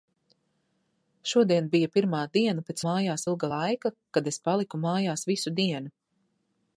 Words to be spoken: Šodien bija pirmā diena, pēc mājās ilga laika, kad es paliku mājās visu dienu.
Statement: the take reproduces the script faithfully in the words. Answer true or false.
true